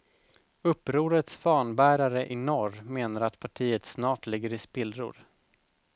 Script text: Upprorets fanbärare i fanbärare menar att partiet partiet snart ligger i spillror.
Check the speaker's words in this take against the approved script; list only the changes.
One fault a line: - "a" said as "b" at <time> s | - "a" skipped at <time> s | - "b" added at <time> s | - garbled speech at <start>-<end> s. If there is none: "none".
- "fanbärare" said as "norr" at 2.3 s
- "partiet" skipped at 3.8 s